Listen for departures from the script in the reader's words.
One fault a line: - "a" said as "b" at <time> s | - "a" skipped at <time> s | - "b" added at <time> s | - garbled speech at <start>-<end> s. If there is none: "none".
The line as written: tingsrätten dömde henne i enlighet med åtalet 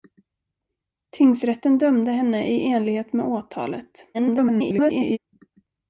- garbled speech at 4.1-5.2 s